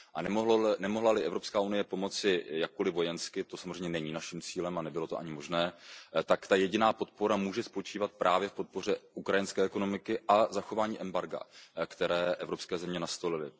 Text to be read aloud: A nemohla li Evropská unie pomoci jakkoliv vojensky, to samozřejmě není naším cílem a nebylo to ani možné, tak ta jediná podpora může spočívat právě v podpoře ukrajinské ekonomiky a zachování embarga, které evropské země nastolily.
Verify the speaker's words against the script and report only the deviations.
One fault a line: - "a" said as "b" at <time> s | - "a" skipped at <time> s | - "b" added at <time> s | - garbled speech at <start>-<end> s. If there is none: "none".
none